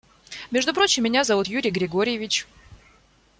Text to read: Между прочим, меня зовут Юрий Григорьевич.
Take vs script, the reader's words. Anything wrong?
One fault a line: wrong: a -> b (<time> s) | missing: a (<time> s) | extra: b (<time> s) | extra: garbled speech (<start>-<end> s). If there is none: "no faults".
no faults